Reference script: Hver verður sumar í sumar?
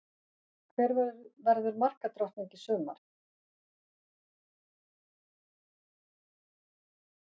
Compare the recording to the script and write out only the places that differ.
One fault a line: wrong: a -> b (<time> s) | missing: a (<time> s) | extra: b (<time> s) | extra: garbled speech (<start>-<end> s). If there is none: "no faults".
wrong: sumar -> markadrottning (1.8 s)